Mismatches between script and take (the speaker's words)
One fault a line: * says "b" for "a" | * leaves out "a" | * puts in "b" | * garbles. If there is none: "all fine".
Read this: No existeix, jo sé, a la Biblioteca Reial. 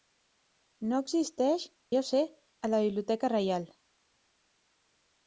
all fine